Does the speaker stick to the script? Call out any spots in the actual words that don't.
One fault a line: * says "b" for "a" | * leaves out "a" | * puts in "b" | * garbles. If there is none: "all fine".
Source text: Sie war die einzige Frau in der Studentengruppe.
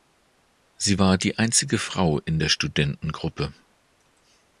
all fine